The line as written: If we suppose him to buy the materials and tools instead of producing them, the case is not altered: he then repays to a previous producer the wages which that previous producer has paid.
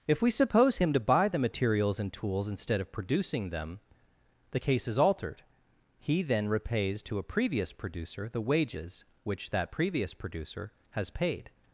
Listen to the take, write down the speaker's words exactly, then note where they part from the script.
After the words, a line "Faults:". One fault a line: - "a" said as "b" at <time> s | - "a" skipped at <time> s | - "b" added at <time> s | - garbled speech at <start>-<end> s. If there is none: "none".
If we suppose him to buy the materials and tools instead of producing them, the case is altered: he then repays to a previous producer the wages which that previous producer has paid.
Faults:
- "not" skipped at 5.0 s